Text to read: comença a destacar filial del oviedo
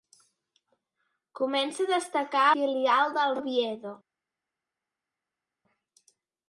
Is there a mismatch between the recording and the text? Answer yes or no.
no